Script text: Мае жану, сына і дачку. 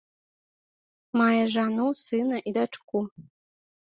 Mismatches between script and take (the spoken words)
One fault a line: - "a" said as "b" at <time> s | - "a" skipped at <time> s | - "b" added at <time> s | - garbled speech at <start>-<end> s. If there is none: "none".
none